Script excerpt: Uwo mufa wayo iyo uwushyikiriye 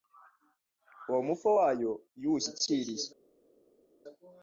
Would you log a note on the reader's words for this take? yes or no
no